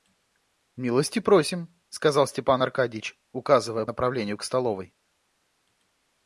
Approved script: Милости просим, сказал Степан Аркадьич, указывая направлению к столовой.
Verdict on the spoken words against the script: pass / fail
pass